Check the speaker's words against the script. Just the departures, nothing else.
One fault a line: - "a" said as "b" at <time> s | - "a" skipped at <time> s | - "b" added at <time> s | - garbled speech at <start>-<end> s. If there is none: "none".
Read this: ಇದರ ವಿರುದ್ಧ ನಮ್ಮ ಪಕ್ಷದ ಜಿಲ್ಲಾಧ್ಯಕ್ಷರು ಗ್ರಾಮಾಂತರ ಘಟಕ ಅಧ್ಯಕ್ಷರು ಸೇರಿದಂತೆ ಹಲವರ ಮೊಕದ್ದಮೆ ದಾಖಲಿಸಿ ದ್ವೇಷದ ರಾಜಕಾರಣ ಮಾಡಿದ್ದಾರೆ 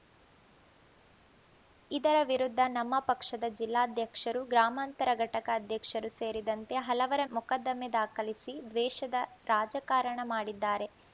none